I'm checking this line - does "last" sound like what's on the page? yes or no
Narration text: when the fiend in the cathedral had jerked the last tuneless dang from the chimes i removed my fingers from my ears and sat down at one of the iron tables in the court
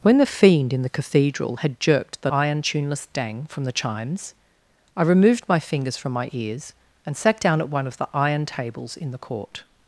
no